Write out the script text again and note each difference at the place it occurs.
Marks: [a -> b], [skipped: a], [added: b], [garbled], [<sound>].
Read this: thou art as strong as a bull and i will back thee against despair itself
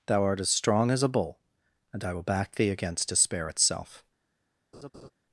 thou art as strong as a bull and i will back thee against despair itself [laugh]